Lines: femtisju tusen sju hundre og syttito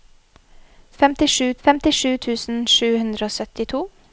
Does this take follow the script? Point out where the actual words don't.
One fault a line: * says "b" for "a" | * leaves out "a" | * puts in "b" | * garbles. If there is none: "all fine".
* puts in "femtisju"